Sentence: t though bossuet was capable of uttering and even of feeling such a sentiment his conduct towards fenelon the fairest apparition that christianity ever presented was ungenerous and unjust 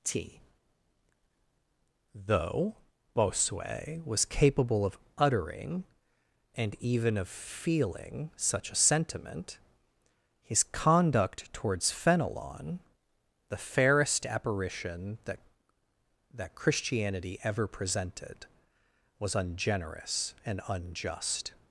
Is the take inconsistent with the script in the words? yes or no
yes